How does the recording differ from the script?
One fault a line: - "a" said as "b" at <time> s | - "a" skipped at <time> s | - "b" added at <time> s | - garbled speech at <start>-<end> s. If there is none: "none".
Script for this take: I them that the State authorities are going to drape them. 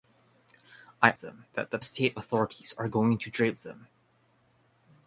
none